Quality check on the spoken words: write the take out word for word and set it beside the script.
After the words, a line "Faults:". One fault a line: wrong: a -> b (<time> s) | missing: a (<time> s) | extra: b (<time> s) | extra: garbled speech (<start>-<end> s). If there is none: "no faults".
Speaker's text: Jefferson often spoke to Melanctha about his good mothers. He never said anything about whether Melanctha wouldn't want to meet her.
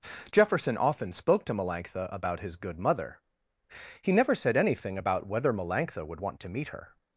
Jefferson often spoke to Melanctha about his good mother. He never said anything about whether Melanctha would want to meet her.
Faults:
wrong: mothers -> mother (2.8 s)
wrong: wouldn't -> would (6.1 s)